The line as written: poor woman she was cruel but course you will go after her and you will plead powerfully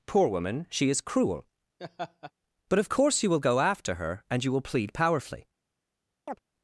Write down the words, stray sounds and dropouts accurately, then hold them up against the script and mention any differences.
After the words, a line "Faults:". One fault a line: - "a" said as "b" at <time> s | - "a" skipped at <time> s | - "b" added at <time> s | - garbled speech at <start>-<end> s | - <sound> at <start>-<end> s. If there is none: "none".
poor woman she is cruel but of course you will go after her and you will plead powerfully
Faults:
- "was" said as "is" at 0.9 s
- laugh at 1.8-2.3 s
- "of" added at 2.8 s
- chirp at 6.3-6.4 s